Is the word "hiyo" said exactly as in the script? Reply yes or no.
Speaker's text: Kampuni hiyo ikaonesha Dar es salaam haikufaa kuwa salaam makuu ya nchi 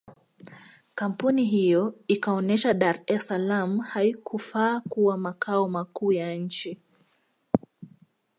yes